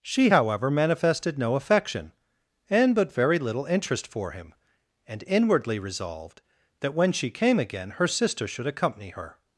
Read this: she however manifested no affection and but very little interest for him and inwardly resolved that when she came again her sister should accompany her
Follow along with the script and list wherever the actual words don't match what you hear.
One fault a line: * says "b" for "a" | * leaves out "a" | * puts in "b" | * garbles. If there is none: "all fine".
all fine